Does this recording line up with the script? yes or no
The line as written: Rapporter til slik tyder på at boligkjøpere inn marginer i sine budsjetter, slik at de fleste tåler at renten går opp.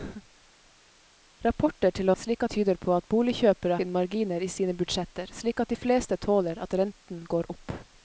yes